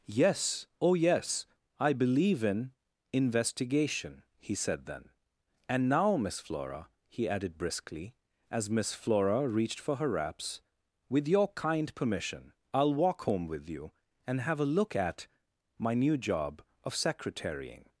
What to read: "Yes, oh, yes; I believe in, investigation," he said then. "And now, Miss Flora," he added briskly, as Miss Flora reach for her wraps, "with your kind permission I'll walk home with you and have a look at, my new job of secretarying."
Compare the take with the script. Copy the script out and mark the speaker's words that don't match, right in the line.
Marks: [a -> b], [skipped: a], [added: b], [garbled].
"Yes, oh, yes; I believe in, investigation," he said then. "And now, Miss Flora," he added briskly, as Miss Flora [reach -> reached] for her wraps, "with your kind permission I'll walk home with you and have a look at, my new job of secretarying."